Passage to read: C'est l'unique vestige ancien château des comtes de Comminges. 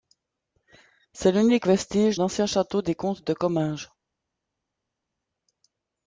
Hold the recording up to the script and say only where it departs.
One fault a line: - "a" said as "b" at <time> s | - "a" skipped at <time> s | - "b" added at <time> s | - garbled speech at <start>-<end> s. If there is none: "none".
none